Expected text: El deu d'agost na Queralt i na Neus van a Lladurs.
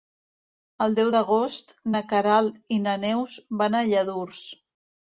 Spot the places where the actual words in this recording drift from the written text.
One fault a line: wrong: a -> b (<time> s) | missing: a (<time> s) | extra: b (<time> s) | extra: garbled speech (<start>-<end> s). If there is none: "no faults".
no faults